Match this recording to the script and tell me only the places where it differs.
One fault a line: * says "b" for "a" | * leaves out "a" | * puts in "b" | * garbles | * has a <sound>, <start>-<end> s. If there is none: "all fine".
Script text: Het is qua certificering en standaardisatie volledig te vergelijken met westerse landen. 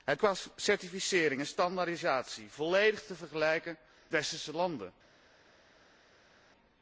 * leaves out "is"
* leaves out "met"